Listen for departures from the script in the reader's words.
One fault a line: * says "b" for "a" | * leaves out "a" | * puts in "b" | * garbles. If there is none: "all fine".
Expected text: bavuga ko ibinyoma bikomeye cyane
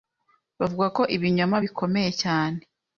all fine